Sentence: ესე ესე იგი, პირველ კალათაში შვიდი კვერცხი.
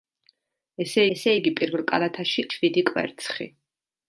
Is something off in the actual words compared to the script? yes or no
no